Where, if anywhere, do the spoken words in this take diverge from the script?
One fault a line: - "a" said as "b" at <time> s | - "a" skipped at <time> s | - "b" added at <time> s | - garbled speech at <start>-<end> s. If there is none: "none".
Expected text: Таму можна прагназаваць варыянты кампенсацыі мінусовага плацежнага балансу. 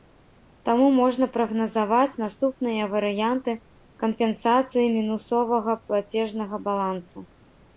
- "наступныя" added at 2.2 s